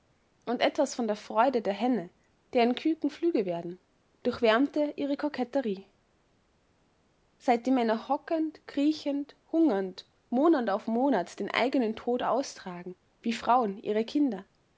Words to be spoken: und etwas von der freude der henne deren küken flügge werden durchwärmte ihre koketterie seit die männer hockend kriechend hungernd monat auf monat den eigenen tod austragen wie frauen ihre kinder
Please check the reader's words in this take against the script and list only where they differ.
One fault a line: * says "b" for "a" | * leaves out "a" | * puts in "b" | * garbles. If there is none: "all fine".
all fine